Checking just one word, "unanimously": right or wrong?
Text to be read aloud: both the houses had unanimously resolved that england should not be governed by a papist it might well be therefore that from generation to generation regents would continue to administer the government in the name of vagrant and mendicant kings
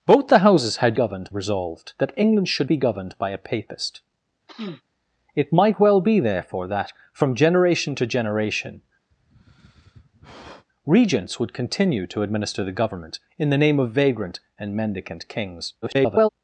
wrong